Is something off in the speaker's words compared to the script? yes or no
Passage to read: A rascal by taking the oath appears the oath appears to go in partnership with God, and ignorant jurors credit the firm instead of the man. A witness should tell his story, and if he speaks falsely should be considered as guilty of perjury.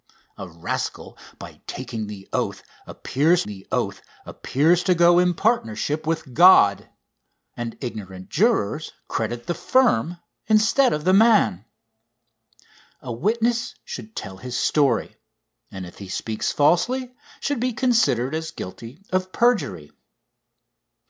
no